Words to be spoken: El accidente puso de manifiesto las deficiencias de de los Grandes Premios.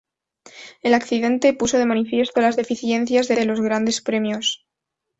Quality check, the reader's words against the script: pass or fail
pass